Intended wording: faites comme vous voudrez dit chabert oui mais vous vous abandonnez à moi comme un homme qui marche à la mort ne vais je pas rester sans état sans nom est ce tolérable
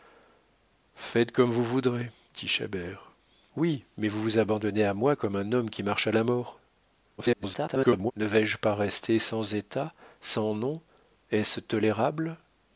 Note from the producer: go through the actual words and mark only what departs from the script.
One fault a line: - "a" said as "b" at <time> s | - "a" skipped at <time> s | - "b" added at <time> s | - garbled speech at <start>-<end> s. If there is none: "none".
- garbled speech at 7.2-8.1 s